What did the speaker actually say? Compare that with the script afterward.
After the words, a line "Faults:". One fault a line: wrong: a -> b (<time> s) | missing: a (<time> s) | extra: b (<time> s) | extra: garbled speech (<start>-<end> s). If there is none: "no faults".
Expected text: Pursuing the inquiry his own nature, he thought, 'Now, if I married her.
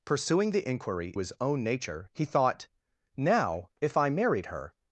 Pursuing the inquiry his own nature, he thought, 'Now, if I married her.
Faults:
no faults